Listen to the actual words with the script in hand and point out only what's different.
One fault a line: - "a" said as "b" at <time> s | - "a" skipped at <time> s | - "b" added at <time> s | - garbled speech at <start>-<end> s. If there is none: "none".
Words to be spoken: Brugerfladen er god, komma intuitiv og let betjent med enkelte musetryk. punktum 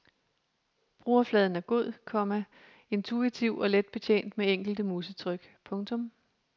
none